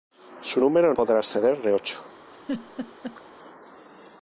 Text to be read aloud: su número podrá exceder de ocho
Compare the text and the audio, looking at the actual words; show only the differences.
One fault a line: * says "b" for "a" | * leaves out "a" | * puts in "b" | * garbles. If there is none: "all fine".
all fine